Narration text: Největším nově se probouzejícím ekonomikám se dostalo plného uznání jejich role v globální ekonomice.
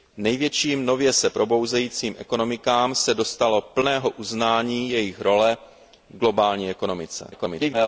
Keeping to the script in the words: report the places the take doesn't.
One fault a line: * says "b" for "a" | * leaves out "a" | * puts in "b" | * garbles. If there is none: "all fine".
* garbles